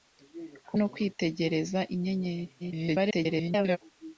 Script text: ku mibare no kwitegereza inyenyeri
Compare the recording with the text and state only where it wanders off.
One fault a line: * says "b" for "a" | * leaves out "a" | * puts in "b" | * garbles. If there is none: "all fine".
* leaves out "mibare"
* garbles